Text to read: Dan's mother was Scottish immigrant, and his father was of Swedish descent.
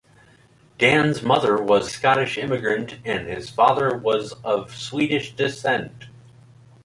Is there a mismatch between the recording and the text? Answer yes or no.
no